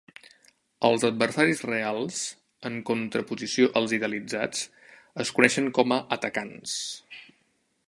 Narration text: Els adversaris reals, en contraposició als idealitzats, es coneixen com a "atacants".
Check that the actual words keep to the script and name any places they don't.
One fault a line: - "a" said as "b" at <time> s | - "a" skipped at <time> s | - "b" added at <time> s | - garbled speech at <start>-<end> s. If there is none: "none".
none